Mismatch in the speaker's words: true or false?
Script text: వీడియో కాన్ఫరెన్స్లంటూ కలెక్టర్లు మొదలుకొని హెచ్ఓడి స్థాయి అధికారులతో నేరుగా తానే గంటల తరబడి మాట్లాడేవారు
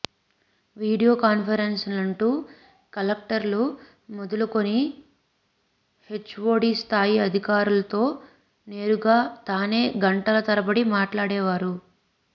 false